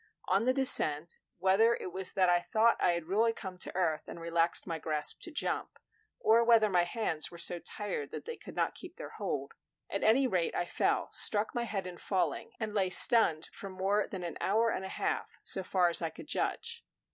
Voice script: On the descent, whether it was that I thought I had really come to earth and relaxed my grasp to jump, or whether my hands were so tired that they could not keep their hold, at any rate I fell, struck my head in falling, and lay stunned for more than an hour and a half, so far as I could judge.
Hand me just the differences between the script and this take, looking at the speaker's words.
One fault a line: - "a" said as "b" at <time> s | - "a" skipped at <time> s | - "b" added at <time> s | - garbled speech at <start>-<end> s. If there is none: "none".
none